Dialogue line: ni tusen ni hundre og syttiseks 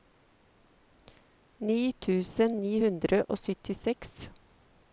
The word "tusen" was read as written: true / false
true